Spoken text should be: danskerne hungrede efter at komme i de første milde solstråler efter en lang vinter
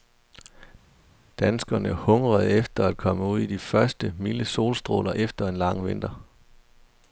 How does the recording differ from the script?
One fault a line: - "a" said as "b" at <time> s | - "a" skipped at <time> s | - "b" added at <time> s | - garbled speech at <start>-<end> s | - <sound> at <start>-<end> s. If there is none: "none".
- "ud" added at 3.2 s